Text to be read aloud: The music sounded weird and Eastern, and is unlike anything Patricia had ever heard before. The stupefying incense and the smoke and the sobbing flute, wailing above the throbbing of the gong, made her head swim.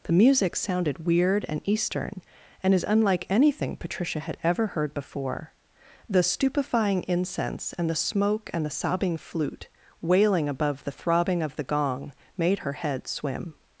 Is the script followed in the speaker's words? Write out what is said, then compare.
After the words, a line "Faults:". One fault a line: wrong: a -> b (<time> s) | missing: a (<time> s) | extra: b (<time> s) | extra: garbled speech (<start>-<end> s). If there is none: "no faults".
The music sounded weird and Eastern, and is unlike anything Patricia had ever heard before. The stupefying incense and the smoke and the sobbing flute, wailing above the throbbing of the gong, made her head swim.
Faults:
no faults